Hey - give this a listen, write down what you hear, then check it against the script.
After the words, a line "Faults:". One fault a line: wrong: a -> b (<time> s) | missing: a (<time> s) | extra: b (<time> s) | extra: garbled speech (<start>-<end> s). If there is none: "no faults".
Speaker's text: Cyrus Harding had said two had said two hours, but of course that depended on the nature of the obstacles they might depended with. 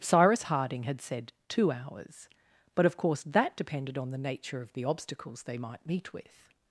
Cyrus Harding had said two hours, but of course that depended on the nature of the obstacles they might meet with.
Faults:
missing: had said two (1.7 s)
wrong: depended -> meet (5.8 s)